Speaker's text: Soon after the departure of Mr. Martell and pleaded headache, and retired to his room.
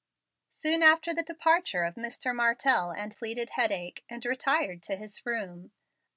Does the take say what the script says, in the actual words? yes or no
yes